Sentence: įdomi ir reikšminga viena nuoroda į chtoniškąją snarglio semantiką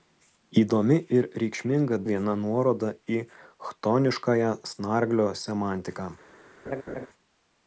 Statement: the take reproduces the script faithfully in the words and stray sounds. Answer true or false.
false